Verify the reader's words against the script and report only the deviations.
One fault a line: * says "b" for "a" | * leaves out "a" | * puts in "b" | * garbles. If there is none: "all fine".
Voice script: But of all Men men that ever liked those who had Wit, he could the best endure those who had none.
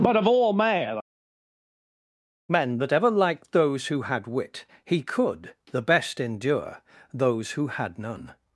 all fine